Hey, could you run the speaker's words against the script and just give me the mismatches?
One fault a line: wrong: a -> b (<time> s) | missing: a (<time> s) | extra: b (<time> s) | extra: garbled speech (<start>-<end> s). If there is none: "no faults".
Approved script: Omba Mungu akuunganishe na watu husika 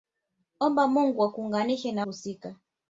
missing: watu (2.0 s)